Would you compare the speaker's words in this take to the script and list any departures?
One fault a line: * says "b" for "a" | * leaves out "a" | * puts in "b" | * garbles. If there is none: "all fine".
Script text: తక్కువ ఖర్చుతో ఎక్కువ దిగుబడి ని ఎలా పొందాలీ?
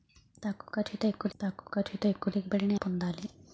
* puts in "తక్కువ ఖర్చుతో ఎక్కువ"
* leaves out "ఎలా"